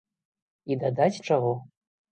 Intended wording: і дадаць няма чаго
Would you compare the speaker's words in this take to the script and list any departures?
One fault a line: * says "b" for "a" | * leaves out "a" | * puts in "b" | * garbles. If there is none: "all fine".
* leaves out "няма"